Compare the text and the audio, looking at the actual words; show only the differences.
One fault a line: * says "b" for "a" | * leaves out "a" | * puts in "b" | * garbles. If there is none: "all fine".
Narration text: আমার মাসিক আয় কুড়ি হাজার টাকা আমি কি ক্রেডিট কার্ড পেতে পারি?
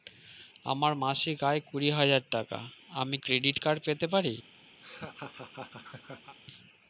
* leaves out "কি"